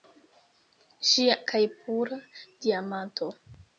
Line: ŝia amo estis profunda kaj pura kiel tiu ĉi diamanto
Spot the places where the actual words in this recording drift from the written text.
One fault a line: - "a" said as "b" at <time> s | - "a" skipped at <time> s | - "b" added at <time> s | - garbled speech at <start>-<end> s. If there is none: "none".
- "amo estis profunda" skipped at 1.3 s
- "kiel tiu ĉi" skipped at 2.2 s